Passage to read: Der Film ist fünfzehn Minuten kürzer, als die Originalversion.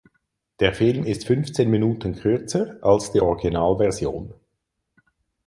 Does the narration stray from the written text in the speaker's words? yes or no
no